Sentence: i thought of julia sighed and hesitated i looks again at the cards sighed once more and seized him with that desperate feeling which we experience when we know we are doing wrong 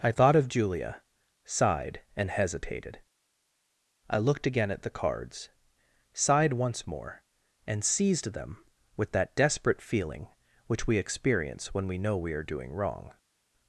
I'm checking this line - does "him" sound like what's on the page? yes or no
no